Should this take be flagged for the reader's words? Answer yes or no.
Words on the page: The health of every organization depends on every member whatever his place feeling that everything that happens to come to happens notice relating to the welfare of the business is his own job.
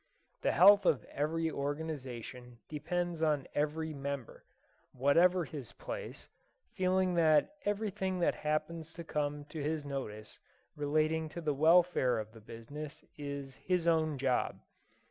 yes